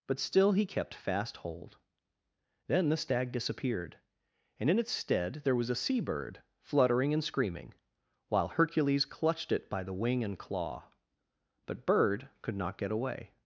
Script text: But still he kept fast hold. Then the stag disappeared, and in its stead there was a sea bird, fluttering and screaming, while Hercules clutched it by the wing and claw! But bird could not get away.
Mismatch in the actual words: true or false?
false